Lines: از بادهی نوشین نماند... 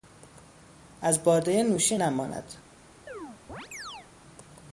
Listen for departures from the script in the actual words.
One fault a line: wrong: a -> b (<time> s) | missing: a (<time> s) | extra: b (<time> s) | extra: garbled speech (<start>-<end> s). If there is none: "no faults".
no faults